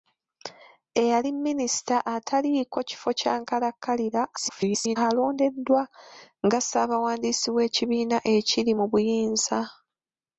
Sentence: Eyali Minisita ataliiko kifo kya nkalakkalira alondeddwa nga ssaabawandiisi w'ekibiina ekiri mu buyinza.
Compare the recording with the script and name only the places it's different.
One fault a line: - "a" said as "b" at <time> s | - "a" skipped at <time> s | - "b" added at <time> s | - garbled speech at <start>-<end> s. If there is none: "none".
- garbled speech at 4.4-5.0 s